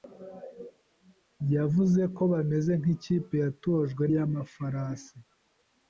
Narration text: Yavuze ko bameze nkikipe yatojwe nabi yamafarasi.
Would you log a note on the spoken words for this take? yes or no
yes